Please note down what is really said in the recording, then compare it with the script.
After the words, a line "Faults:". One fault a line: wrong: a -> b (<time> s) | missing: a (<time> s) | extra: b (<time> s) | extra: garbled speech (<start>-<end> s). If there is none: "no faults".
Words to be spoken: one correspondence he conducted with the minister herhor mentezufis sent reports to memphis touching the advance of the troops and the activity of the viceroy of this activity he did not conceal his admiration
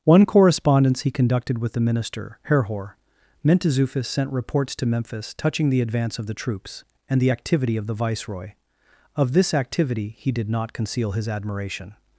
one correspondence he conducted with the minister herhor mentezufis sent reports to memphis touching the advance of the troops and the activity of the viceroy of this activity he did not conceal his admiration
Faults:
no faults